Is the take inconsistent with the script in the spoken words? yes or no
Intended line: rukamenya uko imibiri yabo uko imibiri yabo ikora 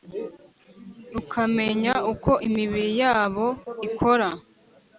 yes